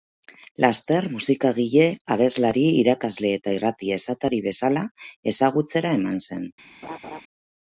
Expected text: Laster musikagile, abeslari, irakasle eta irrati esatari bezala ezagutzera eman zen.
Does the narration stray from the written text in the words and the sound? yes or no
yes